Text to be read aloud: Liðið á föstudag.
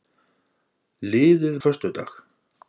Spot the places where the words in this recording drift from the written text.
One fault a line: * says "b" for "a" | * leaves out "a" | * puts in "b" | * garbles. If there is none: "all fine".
all fine